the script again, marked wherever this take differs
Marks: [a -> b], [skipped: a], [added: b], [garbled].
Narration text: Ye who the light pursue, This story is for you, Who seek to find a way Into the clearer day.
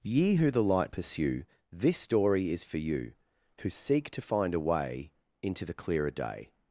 Ye who the light pursue, This story is for you, Who seek to find a way Into the clearer day.